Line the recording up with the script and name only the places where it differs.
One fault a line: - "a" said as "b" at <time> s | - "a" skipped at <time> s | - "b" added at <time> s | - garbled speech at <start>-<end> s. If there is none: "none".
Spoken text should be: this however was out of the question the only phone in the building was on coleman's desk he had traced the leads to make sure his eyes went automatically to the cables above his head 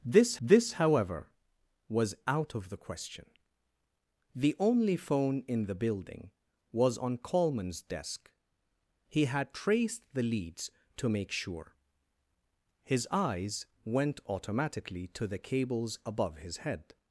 - "this" added at 0.4 s